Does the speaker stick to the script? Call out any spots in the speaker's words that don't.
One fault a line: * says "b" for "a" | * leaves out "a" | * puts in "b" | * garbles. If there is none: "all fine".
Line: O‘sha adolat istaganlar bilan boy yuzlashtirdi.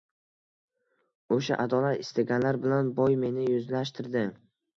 * puts in "meni"